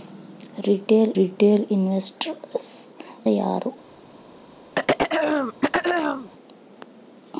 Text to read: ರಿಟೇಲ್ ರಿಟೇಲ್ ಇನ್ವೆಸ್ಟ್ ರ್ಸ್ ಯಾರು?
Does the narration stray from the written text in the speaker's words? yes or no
no